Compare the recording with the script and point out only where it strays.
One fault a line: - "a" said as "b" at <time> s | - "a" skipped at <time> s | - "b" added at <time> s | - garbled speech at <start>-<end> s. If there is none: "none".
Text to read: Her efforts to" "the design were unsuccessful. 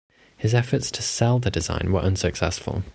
- "Her" said as "His" at 0.3 s
- "sell" added at 1.0 s